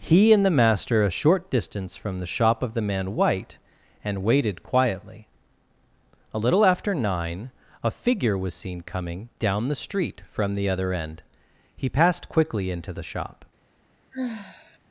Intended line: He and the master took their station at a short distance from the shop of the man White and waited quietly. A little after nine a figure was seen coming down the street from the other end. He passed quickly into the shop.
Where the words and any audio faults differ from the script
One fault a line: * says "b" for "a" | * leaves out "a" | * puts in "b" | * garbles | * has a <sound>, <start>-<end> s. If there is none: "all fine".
* leaves out "took their station at"
* has a sigh, 14.1-14.8 s